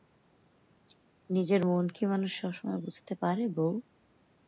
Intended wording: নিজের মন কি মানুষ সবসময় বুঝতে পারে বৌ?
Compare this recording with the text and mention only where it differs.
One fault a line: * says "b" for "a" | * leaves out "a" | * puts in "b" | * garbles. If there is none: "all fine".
all fine